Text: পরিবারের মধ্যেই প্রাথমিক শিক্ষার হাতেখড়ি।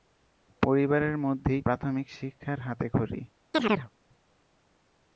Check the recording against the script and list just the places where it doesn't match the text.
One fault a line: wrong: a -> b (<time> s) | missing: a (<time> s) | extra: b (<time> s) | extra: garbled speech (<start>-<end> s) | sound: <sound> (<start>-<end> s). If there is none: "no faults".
sound: chirp (3.5-3.9 s)